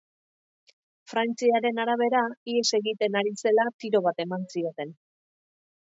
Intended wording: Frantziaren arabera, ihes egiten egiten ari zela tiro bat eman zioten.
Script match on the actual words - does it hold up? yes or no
no